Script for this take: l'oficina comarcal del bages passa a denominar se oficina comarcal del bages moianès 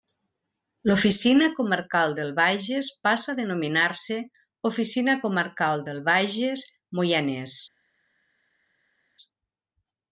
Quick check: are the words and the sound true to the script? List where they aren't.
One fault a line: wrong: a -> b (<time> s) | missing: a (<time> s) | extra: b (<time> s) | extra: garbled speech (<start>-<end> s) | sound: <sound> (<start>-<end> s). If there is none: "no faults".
no faults